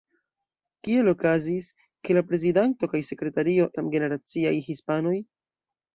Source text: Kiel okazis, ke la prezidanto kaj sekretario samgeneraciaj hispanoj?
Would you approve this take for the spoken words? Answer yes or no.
yes